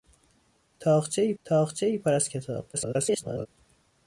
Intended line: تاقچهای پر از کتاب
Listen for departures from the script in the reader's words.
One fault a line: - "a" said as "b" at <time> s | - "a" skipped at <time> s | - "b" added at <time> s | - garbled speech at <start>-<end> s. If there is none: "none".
- "تاقچهای" added at 1.4 s
- garbled speech at 2.7-3.5 s